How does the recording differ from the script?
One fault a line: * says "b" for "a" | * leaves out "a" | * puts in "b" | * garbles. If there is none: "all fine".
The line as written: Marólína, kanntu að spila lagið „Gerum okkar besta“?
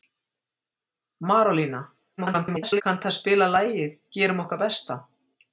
* garbles